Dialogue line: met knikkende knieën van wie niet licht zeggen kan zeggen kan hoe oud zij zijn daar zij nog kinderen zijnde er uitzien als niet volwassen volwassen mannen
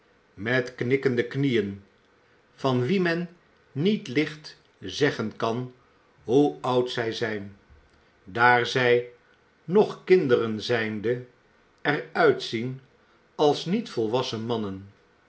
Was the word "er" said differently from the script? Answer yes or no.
no